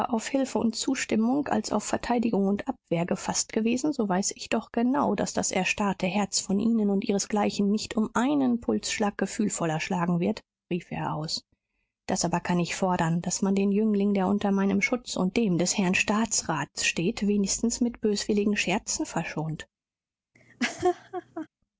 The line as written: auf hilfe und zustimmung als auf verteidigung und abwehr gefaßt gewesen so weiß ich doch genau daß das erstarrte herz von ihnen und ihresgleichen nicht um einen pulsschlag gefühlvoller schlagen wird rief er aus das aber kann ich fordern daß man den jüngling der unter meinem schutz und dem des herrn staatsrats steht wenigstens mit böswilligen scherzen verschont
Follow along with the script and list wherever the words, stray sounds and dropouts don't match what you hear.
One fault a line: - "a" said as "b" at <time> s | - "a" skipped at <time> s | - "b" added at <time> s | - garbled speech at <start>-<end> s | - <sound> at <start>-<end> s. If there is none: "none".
- laugh at 20.3-21.5 s